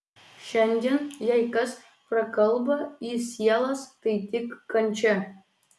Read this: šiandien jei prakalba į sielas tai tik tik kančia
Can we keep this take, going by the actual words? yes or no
no